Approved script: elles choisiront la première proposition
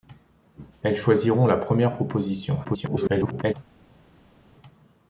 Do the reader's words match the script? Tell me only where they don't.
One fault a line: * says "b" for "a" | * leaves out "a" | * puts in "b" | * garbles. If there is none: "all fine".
* garbles